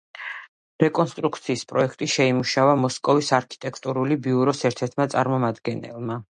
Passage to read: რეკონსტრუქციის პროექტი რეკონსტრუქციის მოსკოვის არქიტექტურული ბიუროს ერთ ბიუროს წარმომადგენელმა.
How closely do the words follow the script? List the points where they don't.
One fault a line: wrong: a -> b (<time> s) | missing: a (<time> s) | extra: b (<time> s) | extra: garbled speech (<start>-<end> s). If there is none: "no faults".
wrong: რეკონსტრუქციის -> შეიმუშავა (2.1 s)
wrong: ბიუროს -> ერთმა (4.9 s)